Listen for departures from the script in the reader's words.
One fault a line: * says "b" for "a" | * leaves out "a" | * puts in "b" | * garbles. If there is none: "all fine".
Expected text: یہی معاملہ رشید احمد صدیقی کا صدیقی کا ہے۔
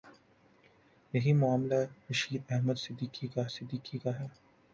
all fine